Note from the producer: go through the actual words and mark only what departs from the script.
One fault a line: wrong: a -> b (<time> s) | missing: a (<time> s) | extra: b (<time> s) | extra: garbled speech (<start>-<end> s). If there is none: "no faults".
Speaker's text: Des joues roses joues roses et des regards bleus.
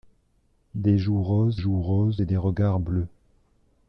no faults